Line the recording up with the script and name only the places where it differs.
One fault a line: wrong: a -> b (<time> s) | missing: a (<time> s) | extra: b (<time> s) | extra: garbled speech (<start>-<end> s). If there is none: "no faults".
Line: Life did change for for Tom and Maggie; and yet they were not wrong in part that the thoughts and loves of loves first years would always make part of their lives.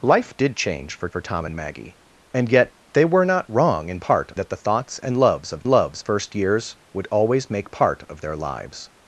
no faults